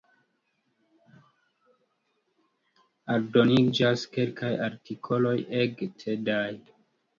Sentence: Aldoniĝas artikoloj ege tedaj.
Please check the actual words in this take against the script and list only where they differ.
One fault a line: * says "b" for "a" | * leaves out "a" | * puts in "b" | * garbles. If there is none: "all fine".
* puts in "kelkaj"